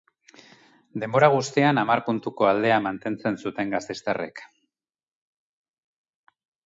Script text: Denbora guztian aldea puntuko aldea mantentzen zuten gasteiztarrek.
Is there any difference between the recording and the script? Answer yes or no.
yes